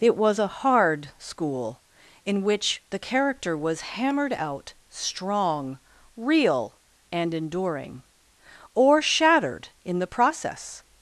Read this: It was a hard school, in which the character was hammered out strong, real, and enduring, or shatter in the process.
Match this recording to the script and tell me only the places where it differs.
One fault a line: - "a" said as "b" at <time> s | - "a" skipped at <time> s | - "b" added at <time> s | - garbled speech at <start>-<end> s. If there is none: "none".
- "shatter" said as "shattered" at 9.0 s